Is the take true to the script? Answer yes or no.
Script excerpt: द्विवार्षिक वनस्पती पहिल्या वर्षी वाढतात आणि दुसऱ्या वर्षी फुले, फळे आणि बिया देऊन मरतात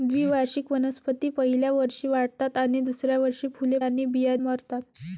no